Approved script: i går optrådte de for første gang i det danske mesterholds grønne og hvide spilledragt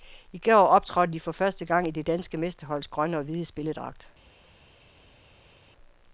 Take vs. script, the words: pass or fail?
pass